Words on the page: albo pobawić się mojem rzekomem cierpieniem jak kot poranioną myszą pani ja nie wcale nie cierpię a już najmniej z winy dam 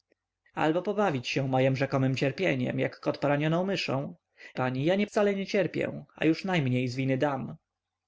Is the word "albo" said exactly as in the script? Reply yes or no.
yes